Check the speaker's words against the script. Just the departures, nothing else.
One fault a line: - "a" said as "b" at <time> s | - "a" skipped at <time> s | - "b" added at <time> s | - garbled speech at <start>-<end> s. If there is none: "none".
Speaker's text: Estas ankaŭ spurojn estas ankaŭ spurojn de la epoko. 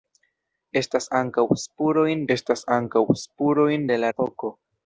none